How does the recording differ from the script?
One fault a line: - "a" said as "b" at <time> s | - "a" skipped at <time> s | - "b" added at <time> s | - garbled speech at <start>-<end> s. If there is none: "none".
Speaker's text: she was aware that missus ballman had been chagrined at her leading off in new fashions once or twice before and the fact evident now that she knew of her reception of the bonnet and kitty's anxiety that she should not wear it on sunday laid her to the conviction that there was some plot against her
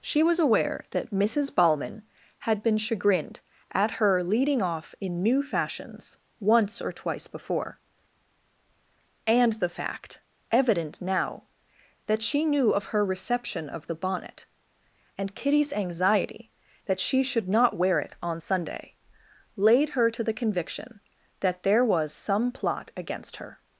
none